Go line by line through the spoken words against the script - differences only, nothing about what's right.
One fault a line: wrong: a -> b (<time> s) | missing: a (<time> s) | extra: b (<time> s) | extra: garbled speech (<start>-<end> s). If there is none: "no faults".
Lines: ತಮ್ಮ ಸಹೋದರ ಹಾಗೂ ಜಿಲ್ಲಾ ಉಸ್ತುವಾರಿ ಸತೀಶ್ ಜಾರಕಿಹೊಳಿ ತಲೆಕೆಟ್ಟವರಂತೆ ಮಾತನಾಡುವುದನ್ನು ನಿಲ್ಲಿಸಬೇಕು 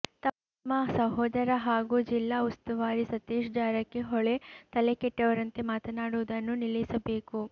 no faults